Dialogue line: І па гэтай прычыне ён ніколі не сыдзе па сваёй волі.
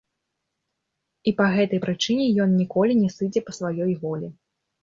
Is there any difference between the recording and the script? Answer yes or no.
no